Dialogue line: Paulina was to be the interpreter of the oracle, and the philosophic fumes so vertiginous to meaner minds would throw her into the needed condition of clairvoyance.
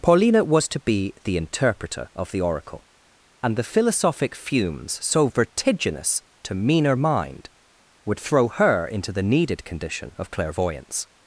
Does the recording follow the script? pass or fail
fail